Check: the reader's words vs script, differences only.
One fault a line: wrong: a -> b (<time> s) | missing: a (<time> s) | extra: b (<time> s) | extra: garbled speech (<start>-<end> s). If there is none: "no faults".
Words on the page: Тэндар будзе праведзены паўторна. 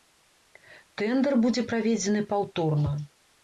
no faults